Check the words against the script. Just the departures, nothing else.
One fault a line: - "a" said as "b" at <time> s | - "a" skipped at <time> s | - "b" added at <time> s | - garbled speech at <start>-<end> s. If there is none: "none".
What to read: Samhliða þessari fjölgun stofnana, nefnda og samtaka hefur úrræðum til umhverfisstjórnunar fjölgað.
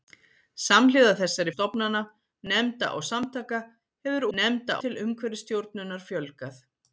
- "fjölgun" skipped at 1.5 s
- "úrræðum" said as "nefnda" at 4.4 s